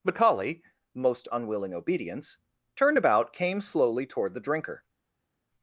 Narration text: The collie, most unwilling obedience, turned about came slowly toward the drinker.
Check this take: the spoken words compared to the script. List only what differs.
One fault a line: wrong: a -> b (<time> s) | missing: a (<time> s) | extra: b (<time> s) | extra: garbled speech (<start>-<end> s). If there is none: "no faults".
no faults